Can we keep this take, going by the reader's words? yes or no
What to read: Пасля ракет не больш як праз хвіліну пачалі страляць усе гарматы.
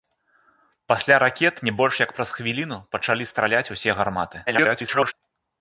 no